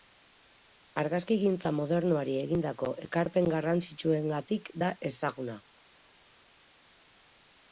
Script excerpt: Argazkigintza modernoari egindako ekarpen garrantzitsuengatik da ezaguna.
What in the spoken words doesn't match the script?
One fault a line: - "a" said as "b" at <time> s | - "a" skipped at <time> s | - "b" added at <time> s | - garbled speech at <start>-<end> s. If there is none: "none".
none